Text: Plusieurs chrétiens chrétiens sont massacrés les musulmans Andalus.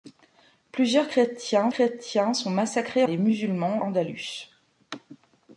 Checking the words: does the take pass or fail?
pass